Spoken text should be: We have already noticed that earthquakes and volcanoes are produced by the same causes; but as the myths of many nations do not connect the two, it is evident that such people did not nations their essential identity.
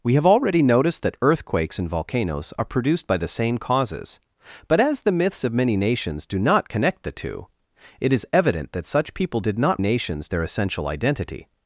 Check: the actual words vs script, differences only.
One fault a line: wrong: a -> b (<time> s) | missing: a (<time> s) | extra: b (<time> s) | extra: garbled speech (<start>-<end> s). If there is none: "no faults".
no faults